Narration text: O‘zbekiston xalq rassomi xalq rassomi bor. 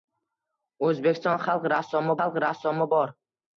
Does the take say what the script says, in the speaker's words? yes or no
yes